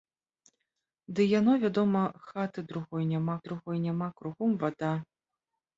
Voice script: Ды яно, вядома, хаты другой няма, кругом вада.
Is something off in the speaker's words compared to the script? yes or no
yes